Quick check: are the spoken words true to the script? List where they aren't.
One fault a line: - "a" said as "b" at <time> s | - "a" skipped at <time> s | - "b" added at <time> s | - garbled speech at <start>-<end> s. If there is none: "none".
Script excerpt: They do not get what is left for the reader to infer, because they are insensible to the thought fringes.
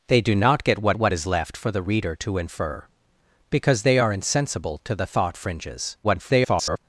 - "what" added at 1.0 s
- garbled speech at 6.0-6.8 s